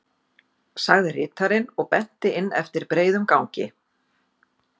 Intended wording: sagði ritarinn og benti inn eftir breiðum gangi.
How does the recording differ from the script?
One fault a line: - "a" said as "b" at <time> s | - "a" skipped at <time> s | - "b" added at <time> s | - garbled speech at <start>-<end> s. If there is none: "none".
none